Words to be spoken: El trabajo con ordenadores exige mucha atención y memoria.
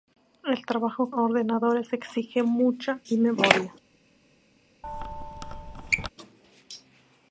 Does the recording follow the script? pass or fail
fail